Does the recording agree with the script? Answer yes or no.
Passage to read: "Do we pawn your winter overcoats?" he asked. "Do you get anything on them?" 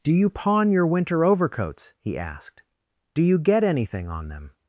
no